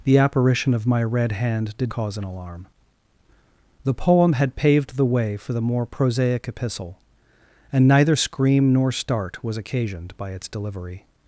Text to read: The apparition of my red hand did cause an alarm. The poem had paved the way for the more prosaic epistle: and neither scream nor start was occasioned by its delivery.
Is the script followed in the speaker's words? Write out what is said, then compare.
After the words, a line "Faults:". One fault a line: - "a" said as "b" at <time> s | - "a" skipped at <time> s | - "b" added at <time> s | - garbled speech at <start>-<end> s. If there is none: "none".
The apparition of my red hand did cause an alarm. The poem had paved the way for the more prosaic epistle: and neither scream nor start was occasioned by its delivery.
Faults:
none